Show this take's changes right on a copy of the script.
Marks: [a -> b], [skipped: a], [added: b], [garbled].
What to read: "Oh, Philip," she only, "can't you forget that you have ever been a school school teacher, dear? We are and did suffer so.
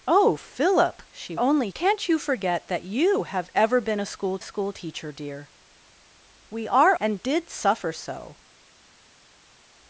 "Oh, Philip," she only, "can't you forget that you have ever been a school school teacher, dear? We are and did suffer so.